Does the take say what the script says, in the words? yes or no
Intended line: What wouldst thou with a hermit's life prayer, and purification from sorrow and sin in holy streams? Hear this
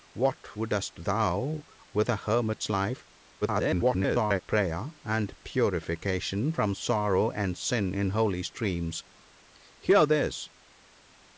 no